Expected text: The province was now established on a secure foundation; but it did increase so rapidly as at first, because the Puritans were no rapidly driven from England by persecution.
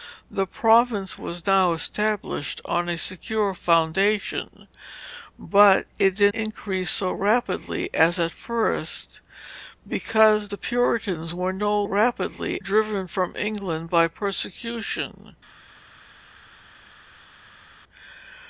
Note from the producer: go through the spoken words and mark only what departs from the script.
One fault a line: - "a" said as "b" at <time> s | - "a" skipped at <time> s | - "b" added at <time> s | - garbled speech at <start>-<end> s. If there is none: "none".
none